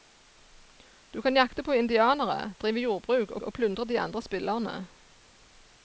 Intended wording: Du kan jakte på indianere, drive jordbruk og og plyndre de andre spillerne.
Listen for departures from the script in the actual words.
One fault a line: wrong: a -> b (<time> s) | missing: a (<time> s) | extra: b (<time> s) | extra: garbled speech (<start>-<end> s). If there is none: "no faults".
no faults